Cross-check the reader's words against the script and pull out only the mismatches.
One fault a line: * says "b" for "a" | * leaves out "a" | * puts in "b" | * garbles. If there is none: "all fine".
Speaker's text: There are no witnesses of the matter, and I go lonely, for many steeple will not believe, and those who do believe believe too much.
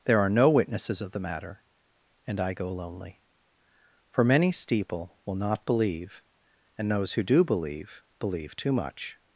all fine